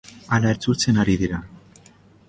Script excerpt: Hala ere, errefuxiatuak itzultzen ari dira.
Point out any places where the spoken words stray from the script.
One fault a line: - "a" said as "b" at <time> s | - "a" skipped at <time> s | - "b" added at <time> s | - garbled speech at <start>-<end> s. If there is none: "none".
- "ere errefuxiatuak" skipped at 0.5 s